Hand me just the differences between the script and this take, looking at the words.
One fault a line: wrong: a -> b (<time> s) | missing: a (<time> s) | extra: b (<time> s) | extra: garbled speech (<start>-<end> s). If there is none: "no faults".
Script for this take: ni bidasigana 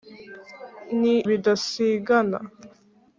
no faults